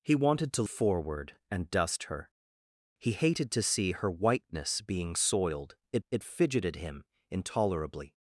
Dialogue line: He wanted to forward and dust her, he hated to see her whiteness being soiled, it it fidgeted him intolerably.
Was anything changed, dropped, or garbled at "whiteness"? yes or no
no